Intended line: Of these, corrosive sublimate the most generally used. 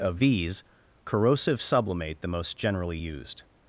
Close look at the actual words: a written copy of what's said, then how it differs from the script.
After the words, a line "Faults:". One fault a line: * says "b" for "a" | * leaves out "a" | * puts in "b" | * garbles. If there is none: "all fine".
Of these, corrosive sublimate the most generally used.
Faults:
all fine